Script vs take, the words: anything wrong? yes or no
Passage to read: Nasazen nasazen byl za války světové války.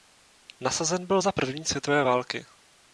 yes